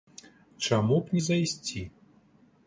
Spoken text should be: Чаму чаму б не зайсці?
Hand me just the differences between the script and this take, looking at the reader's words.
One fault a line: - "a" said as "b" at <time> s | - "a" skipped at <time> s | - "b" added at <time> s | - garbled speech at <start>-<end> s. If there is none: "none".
- "чаму" skipped at 1.0 s